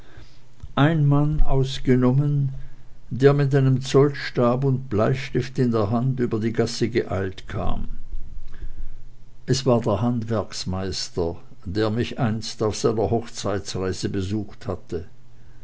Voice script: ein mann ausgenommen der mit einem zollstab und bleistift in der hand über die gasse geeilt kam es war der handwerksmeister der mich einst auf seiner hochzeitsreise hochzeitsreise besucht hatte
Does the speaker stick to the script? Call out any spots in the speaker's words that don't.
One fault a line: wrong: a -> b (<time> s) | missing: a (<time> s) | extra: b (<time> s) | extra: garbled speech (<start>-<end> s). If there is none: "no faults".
missing: hochzeitsreise (14.1 s)